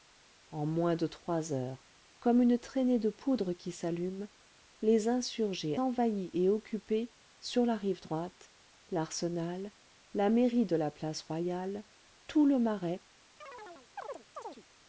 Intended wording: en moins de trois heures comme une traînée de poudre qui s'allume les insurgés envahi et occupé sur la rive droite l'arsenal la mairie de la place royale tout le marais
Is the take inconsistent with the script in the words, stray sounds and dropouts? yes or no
yes